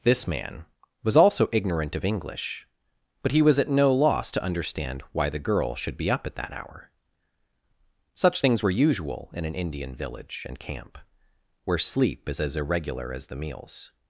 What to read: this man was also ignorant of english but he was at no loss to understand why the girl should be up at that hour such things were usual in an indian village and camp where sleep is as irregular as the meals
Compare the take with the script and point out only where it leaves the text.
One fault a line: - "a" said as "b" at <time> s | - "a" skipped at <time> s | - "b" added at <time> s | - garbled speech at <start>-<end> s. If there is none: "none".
none